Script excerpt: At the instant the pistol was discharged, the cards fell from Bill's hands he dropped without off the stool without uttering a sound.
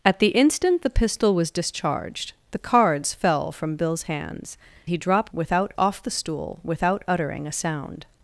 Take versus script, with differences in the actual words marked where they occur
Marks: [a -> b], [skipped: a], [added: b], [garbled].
At the instant the pistol was discharged, the cards fell from Bill's hands he dropped without off the stool without uttering a sound.